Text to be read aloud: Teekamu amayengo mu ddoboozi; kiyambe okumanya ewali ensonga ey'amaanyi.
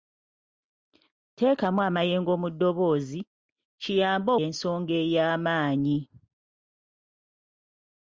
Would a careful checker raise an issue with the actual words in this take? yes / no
yes